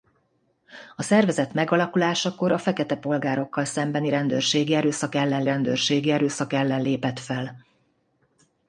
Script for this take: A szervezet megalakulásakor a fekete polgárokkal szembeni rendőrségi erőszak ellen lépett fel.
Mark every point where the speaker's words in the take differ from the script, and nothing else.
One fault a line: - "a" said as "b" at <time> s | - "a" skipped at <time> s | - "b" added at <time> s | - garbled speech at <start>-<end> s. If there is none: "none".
- "rendőrségi erőszak ellen" added at 5.4 s